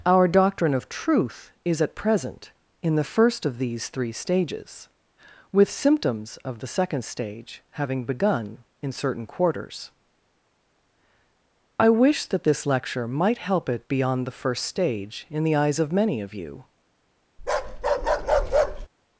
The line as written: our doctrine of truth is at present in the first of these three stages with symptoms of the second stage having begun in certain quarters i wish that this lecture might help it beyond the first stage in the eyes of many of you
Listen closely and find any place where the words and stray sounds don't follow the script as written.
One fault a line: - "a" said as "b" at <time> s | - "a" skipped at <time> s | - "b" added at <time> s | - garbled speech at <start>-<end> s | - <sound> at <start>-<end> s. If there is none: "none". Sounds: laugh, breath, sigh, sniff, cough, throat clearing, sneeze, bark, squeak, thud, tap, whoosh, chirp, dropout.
- bark at 17.4-18.9 s